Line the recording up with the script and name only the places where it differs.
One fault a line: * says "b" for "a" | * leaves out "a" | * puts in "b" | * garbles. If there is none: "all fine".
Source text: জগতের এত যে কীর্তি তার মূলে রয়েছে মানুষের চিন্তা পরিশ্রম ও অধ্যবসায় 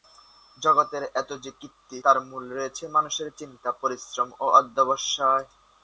all fine